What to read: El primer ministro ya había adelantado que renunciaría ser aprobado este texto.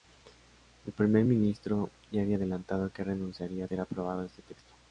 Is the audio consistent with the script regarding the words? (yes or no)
yes